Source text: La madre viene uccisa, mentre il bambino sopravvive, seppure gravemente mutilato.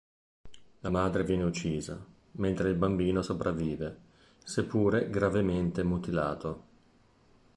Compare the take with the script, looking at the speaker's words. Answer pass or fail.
pass